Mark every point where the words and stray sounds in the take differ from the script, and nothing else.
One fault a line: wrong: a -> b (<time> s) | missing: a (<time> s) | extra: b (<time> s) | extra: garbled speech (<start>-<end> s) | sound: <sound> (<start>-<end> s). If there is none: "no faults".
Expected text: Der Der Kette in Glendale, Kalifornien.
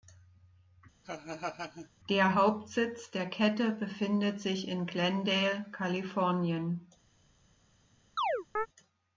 sound: laugh (1.0-1.9 s)
extra: Hauptsitz (2.3 s)
extra: befindet sich (3.7 s)
sound: chirp (8.2-8.7 s)